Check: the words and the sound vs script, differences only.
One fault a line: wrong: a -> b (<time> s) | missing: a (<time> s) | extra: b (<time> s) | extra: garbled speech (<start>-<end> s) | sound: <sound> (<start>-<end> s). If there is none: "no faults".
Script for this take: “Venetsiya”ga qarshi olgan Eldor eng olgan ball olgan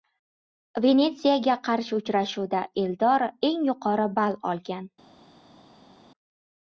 wrong: olgan -> uchrashuvda (2.0 s)
wrong: olgan -> yuqori (3.7 s)